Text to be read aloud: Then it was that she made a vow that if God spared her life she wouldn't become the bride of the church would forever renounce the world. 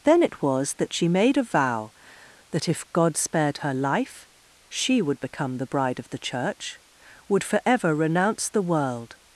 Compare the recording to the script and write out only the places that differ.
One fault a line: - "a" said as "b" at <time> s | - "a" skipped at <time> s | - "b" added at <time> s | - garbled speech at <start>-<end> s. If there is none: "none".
- "wouldn't" said as "would" at 5.0 s